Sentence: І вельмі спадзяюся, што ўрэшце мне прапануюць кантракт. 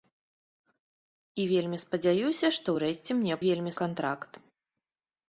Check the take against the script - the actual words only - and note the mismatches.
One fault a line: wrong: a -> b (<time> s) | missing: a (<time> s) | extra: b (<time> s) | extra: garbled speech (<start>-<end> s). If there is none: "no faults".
wrong: прапануюць -> вельмі (3.4 s)